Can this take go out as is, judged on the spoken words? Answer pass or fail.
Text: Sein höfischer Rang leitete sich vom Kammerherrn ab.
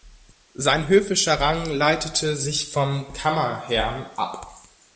pass